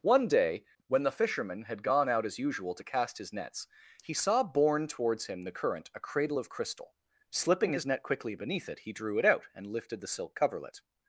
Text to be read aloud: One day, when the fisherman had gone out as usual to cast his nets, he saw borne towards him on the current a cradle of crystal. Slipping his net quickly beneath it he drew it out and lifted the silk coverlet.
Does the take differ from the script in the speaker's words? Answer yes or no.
yes